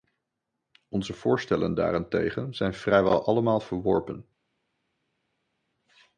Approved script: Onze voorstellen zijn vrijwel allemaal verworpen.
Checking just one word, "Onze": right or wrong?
right